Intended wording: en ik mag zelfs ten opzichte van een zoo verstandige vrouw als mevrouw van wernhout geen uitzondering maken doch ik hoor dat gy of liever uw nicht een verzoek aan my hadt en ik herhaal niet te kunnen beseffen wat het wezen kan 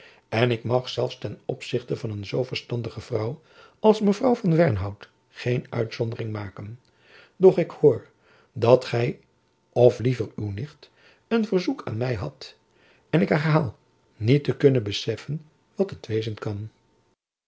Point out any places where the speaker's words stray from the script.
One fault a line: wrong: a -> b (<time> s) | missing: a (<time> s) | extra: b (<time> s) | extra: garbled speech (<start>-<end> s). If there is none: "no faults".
no faults